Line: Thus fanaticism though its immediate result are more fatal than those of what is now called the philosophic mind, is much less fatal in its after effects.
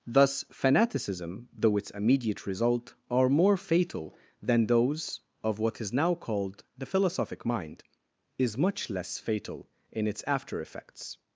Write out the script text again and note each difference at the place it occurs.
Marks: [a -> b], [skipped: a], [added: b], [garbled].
Thus fanaticism though its immediate result are more fatal than those of what is now called the philosophic mind, is much less fatal in its after effects.